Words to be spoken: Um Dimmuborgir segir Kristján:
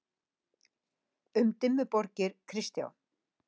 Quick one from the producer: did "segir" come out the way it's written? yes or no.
no